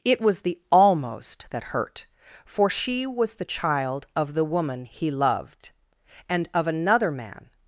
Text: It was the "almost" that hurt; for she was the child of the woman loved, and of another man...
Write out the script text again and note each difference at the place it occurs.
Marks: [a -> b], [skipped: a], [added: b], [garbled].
It was the "almost" that hurt; for she was the child of the woman [added: he] loved, and of another man...